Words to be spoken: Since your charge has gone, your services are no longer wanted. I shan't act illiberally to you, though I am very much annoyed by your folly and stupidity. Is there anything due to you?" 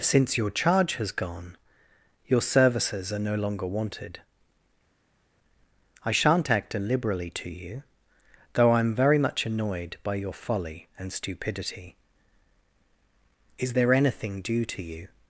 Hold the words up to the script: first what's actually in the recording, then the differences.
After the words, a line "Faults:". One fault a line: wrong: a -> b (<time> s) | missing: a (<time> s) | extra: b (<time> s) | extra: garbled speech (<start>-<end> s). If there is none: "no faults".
Since your charge has gone, your services are no longer wanted. I shan't act illiberally to you, though I am very much annoyed by your folly and stupidity. Is there anything due to you?"
Faults:
no faults